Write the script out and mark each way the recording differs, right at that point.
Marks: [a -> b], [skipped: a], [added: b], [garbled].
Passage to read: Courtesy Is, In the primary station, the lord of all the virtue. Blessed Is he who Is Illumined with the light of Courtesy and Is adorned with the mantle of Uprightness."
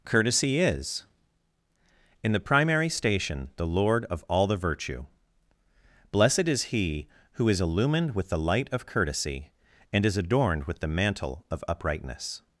Courtesy Is, In the primary station, the lord of all the virtue. Blessed Is he who Is Illumined with the light of Courtesy and Is adorned with the mantle of Uprightness."